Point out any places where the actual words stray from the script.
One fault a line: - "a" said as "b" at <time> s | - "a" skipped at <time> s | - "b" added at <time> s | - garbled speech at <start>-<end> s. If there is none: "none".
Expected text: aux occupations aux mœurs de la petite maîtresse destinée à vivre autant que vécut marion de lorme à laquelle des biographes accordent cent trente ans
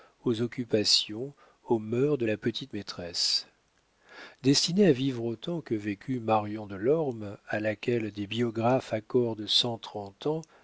none